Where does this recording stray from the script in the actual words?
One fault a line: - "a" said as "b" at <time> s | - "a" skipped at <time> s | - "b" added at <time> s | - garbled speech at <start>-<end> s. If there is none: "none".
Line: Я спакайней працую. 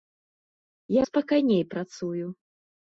none